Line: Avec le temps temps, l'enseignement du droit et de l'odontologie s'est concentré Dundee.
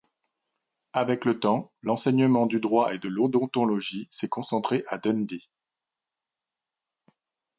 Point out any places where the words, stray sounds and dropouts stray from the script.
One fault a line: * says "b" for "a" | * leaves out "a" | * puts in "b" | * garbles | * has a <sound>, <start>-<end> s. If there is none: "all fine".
* leaves out "temps"
* puts in "à"